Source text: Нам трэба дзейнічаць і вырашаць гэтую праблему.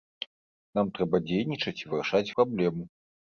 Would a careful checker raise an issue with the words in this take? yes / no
yes